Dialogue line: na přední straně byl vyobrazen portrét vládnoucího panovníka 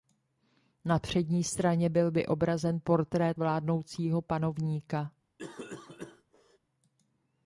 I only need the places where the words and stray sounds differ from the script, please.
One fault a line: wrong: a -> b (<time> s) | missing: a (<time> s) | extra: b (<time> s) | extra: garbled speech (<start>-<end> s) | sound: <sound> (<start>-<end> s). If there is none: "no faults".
sound: cough (5.4-6.6 s)